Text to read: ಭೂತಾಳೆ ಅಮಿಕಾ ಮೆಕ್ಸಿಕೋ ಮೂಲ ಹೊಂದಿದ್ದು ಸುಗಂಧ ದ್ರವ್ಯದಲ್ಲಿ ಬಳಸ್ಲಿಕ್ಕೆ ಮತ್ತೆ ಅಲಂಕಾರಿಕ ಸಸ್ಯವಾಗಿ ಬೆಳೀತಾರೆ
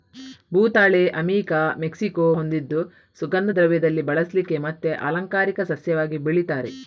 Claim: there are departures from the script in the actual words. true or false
true